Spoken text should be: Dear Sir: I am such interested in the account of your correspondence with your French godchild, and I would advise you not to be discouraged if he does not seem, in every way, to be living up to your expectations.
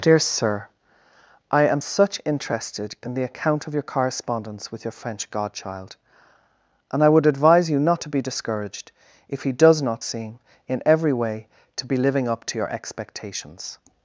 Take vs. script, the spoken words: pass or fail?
pass